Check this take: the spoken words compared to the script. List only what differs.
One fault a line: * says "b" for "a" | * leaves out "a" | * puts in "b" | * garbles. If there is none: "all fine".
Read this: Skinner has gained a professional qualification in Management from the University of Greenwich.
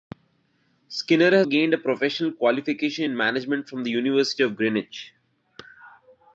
all fine